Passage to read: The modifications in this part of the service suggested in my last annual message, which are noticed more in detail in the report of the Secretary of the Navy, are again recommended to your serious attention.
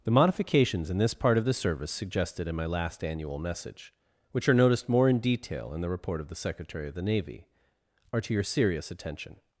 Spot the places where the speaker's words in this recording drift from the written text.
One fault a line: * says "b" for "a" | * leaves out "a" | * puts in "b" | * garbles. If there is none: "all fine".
* leaves out "again recommended"